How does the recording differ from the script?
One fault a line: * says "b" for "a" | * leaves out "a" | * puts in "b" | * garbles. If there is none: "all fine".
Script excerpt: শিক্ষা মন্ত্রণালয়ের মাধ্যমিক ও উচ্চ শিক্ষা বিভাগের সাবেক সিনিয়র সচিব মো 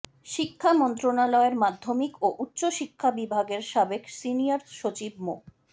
all fine